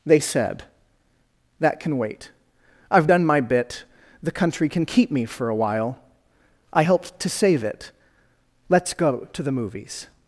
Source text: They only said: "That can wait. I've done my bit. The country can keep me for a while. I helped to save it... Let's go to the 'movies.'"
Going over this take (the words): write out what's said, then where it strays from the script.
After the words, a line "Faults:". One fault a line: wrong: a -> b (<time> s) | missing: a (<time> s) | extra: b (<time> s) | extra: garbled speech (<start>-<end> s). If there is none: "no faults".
They said: "That can wait. I've done my bit. The country can keep me for a while. I helped to save it... Let's go to the 'movies.'"
Faults:
missing: only (0.2 s)